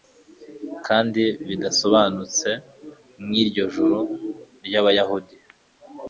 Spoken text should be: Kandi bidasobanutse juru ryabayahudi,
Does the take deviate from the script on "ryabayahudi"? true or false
false